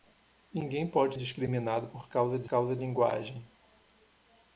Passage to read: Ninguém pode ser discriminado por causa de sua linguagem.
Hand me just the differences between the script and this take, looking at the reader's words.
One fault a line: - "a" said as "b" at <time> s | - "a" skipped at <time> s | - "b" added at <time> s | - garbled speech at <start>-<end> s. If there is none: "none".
- "ser" skipped at 1.1 s
- "sua" said as "causa" at 2.4 s